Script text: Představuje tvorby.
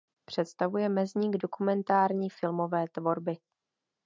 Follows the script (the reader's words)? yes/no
no